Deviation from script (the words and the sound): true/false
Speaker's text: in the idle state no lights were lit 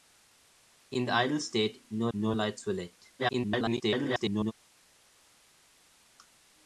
true